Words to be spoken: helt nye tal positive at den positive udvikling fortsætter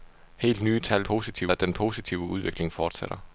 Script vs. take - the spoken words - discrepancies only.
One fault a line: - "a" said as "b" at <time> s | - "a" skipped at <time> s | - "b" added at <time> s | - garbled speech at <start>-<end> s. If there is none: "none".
none